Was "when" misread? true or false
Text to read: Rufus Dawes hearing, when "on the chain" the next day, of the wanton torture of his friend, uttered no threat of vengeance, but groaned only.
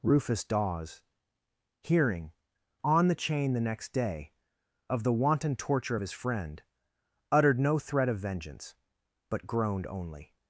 true